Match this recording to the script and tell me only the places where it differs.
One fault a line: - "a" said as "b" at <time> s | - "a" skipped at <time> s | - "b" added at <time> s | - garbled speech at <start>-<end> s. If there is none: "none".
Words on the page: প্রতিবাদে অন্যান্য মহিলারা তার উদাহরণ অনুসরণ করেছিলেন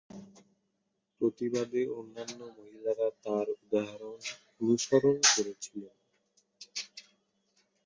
none